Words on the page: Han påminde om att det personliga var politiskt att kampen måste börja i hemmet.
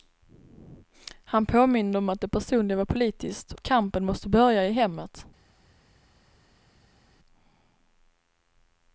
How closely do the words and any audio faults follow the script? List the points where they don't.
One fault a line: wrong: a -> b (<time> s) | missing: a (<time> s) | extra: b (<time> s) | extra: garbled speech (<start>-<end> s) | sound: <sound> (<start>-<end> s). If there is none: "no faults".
no faults